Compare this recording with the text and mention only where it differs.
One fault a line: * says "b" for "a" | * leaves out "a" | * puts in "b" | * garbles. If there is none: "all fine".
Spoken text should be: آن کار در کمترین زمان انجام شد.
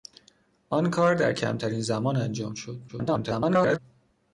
* garbles